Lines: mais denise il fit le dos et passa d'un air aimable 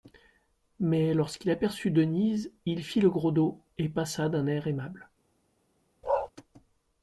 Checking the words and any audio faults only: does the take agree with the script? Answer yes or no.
no